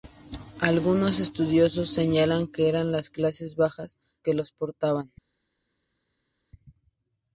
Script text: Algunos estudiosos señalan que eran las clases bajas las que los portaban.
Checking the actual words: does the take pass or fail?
fail